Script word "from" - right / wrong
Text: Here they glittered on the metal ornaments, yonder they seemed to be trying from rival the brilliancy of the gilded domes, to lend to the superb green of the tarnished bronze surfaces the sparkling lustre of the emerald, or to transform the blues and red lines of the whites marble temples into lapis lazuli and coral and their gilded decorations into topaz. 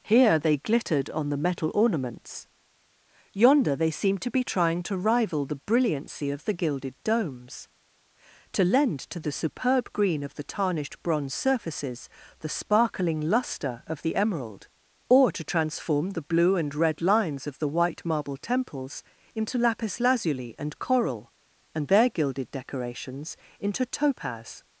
wrong